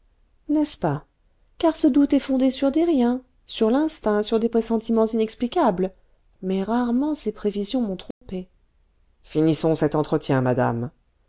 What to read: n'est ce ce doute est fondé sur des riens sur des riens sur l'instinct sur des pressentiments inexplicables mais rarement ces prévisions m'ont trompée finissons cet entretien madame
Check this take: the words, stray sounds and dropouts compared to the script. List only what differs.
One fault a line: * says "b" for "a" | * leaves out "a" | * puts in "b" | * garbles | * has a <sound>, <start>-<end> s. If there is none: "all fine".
* puts in "pas car"
* leaves out "des riens sur"
* has a dropout, 8.1-8.2 s